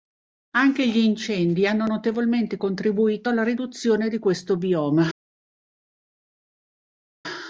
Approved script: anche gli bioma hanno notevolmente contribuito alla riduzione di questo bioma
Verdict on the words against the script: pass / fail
fail